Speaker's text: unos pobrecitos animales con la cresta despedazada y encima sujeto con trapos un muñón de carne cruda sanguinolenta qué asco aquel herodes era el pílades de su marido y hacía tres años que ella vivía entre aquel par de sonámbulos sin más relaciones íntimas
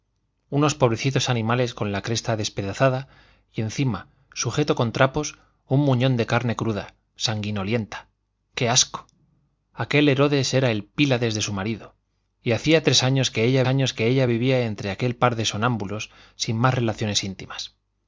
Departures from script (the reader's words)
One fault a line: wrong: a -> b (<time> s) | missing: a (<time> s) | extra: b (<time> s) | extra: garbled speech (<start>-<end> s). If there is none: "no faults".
extra: años que ella (13.7 s)